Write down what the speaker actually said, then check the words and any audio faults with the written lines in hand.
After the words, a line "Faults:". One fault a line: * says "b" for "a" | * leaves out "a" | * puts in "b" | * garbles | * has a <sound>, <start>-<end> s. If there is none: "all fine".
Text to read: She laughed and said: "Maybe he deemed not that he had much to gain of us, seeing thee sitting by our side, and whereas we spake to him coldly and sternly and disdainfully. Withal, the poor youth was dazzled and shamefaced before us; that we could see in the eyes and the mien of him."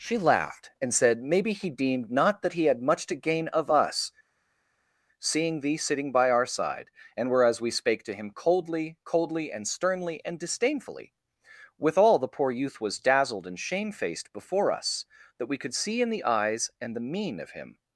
She laughed and said: "Maybe he deemed not that he had much to gain of us, seeing thee sitting by our side, and whereas we spake to him coldly coldly and sternly and disdainfully. Withal, the poor youth was dazzled and shamefaced before us; that we could see in the eyes and the mien of him."
Faults:
* puts in "coldly"